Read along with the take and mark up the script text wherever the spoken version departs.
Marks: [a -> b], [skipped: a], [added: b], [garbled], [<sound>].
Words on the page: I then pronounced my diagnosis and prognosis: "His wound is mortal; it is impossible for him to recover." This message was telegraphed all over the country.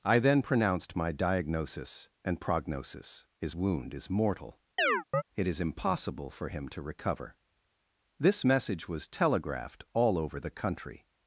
I then pronounced my diagnosis and prognosis: "His wound is mortal; [chirp] it is impossible for him to recover." This message was telegraphed all over the country.